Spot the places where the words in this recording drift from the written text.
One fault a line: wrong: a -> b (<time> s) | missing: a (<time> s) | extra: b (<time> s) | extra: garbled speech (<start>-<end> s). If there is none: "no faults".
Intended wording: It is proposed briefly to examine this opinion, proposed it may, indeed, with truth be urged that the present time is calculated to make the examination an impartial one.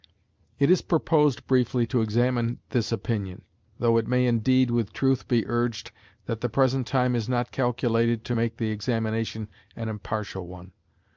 wrong: proposed -> though (3.8 s)
extra: not (7.3 s)